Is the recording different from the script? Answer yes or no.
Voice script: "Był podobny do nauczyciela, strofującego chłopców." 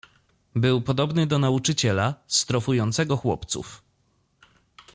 no